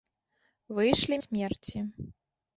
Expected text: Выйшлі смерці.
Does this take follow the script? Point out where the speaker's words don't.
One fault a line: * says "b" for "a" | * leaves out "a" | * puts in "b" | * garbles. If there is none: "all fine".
all fine